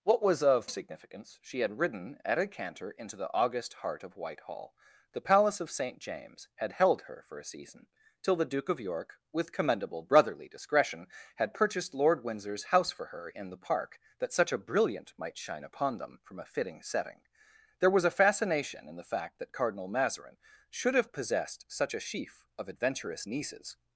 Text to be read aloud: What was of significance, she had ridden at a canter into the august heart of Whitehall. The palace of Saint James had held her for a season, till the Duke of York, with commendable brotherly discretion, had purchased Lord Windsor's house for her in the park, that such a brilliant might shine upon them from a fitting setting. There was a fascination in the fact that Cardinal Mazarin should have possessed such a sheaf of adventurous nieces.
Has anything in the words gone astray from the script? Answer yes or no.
no